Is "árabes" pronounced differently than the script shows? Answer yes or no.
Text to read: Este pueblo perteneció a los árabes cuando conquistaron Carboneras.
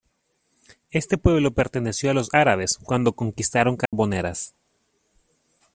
no